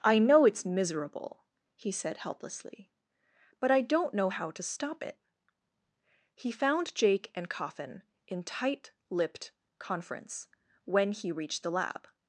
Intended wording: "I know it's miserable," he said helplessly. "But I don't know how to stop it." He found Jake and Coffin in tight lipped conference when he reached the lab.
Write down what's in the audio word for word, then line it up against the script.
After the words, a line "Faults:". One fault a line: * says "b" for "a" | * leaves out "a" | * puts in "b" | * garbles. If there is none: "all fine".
"I know it's miserable," he said helplessly. "But I don't know how to stop it." He found Jake and Coffin in tight lipped conference when he reached the lab.
Faults:
all fine